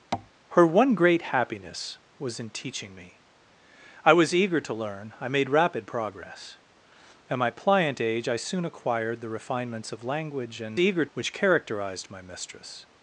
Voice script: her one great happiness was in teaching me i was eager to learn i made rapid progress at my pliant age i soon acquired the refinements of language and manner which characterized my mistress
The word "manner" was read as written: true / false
false